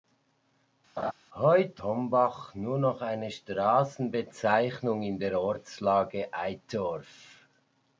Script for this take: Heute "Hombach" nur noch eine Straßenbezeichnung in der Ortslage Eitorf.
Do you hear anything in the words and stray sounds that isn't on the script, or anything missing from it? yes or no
yes